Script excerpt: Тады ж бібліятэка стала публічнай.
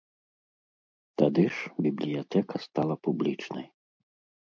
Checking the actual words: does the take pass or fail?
pass